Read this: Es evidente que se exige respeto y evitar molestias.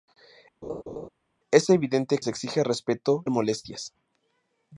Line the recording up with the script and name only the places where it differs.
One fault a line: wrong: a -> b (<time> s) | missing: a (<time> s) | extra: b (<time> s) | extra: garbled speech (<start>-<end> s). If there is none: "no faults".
missing: que (2.2 s)
missing: y evitar (3.2 s)